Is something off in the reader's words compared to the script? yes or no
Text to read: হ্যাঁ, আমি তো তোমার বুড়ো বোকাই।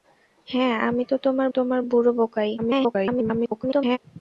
yes